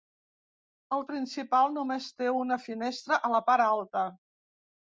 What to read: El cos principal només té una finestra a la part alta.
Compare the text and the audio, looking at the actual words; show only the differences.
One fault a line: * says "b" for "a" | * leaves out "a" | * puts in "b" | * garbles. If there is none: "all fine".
* leaves out "cos"